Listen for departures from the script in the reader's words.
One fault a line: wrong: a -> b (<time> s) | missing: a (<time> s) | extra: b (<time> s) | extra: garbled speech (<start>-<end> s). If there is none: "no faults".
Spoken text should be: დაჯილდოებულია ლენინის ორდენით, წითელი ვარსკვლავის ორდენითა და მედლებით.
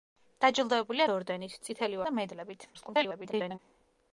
missing: ლენინის (1.1 s)
missing: ვარსკვლავის ორდენითა (2.0 s)
extra: garbled speech (2.7-3.6 s)